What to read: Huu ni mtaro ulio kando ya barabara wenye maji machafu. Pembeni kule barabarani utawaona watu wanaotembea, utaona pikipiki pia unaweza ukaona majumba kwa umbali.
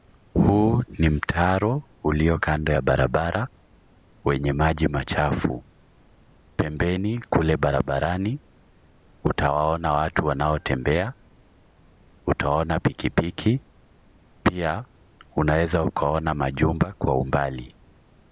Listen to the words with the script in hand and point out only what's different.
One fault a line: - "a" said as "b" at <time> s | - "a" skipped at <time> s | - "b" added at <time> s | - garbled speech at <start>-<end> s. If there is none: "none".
none